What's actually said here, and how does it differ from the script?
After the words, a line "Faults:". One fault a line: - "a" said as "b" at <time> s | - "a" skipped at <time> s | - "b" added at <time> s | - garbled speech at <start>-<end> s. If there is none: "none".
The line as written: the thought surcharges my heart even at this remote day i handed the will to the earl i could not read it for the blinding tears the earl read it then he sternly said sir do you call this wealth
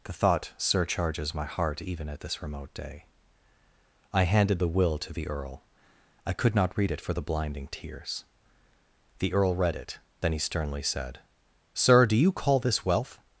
the thought surcharges my heart even at this remote day i handed the will to the earl i could not read it for the blinding tears the earl read it then he sternly said sir do you call this wealth
Faults:
none